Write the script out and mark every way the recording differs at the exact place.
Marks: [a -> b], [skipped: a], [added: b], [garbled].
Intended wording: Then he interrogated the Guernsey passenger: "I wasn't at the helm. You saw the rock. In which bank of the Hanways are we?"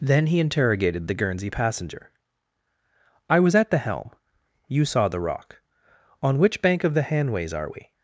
Then he interrogated the Guernsey passenger: "I [wasn't -> was] at the helm. You saw the rock. [In -> On] which bank of the Hanways are we?"